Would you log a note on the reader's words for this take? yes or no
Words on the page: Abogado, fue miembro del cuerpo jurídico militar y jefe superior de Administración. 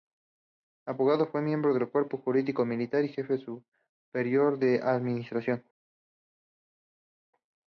no